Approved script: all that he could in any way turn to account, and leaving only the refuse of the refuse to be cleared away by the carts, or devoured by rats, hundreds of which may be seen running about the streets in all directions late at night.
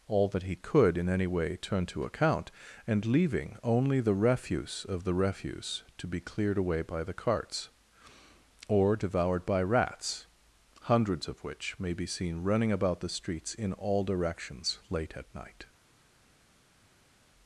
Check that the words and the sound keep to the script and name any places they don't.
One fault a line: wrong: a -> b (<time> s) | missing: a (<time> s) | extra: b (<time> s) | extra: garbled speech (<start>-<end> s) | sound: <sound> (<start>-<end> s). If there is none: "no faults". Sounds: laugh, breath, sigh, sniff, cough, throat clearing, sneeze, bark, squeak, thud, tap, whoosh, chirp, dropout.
no faults